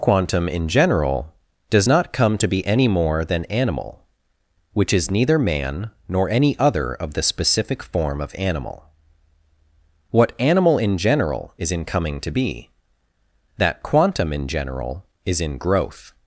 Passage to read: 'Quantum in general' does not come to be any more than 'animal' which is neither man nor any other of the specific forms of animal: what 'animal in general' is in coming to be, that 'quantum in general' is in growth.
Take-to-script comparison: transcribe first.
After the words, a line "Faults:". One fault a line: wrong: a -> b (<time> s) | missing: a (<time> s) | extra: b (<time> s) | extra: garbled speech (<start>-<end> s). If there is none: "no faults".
'Quantum in general' does not come to be any more than 'animal' which is neither man nor any other of the specific form of animal: what 'animal in general' is in coming to be, that 'quantum in general' is in growth.
Faults:
wrong: forms -> form (7.8 s)